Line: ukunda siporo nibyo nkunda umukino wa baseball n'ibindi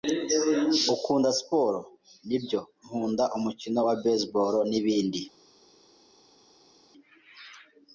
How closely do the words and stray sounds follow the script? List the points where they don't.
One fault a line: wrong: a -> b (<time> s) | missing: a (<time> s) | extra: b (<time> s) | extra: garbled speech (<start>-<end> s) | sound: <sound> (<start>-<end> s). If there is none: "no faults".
no faults